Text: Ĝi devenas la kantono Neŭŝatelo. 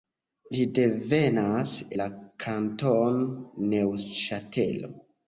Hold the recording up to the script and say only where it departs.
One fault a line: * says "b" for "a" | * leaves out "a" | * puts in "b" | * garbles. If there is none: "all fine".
all fine